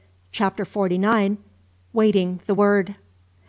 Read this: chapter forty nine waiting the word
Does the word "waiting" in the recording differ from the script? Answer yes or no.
no